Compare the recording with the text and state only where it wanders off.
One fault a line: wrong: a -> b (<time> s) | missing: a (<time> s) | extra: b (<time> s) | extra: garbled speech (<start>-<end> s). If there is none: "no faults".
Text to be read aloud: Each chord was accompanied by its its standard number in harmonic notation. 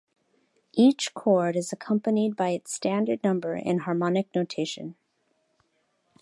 wrong: was -> is (1.6 s)
missing: its (2.7 s)